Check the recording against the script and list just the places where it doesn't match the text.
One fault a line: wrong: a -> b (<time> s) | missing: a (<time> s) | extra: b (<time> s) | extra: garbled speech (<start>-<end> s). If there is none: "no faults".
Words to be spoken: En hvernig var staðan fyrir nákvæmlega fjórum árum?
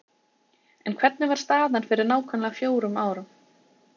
no faults